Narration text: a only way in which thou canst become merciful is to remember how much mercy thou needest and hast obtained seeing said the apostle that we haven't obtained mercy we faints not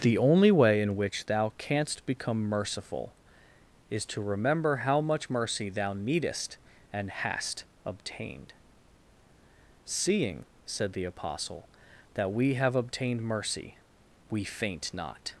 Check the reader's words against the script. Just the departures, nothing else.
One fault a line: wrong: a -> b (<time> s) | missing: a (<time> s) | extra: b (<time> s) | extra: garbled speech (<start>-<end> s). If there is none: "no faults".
wrong: a -> the (0.0 s)
wrong: haven't -> have (12.6 s)
wrong: faints -> faint (14.4 s)